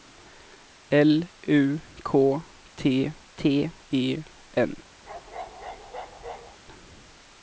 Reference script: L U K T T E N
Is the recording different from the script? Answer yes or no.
no